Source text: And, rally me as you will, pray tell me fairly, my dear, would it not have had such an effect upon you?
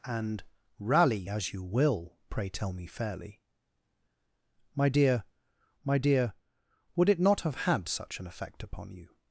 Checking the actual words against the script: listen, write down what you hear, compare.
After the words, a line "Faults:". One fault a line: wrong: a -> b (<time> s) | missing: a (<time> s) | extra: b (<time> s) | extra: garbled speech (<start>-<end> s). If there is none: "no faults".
And, rally as you will, pray tell me fairly, my dear my dear, would it not have had such an effect upon you?
Faults:
missing: me (1.3 s)
extra: my dear (5.8 s)